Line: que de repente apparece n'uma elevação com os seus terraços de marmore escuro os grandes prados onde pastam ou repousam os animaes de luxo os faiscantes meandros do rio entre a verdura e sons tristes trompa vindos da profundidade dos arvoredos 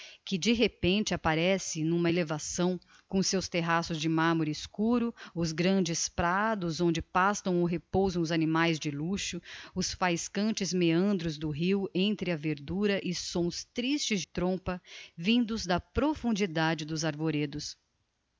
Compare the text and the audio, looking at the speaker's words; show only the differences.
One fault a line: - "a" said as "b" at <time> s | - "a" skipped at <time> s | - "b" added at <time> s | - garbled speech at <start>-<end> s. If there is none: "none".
none